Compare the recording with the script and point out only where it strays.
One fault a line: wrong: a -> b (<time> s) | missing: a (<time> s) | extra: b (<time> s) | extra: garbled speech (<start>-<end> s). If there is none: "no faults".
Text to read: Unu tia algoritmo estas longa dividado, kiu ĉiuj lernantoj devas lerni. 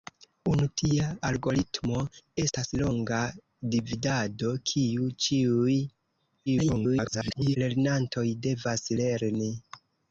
extra: garbled speech (6.5-7.6 s)